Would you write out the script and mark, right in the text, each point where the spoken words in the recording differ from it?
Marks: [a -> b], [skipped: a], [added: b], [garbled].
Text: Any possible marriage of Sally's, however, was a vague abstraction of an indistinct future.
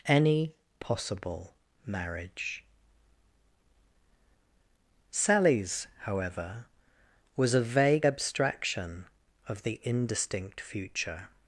Any possible marriage [skipped: of] Sally's, however, was a vague abstraction of [an -> the] indistinct future.